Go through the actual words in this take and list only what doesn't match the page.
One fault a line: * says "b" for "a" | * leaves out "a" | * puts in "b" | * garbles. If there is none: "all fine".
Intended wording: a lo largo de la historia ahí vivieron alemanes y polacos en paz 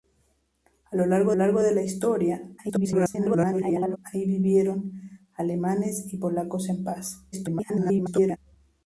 * puts in "largo"
* garbles
* garbles